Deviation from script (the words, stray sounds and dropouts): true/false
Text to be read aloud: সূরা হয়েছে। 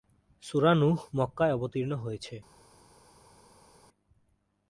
true